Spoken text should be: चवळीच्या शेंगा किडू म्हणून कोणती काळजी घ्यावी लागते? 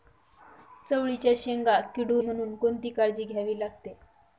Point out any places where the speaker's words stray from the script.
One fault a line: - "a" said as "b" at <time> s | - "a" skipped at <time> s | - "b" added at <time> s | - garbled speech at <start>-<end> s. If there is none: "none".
none